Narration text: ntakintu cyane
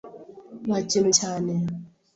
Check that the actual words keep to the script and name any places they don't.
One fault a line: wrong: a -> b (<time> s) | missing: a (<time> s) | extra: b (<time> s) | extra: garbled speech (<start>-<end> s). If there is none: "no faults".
no faults